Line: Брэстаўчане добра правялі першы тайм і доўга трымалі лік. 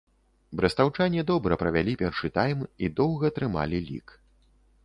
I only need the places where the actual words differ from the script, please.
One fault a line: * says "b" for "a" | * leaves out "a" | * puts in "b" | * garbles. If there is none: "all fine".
all fine